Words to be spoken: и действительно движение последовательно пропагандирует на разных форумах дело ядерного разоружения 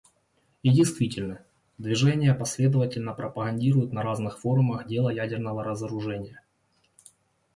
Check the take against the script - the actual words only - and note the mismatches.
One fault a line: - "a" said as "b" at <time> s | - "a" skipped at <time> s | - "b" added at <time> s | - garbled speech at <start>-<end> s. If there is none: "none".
none